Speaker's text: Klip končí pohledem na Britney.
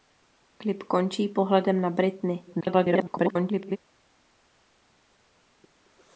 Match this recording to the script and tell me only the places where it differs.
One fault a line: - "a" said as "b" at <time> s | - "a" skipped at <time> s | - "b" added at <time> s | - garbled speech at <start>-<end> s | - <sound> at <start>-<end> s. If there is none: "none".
- garbled speech at 2.5-3.8 s